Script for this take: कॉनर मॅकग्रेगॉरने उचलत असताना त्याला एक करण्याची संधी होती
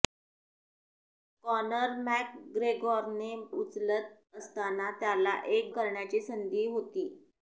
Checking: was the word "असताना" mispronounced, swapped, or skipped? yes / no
no